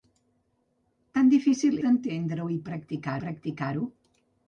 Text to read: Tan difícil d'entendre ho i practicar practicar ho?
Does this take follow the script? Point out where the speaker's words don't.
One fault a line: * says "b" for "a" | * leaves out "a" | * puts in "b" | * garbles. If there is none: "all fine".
all fine